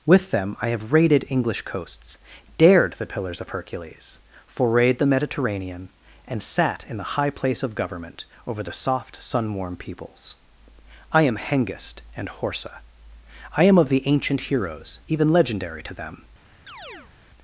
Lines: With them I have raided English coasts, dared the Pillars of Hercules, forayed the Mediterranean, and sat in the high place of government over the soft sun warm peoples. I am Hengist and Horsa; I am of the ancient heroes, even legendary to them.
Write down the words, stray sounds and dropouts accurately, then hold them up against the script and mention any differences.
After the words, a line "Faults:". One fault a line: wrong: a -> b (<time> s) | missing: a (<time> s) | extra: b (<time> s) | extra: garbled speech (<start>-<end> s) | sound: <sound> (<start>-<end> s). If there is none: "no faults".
With them I have raided English coasts, dared the Pillars of Hercules, forayed the Mediterranean, and sat in the high place of government over the soft sun warm peoples. I am Hengist and Horsa; I am of the ancient heroes, even legendary to them.
Faults:
sound: chirp (16.7-17.1 s)